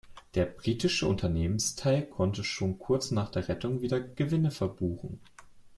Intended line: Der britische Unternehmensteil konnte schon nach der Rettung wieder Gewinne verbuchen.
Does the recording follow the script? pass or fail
fail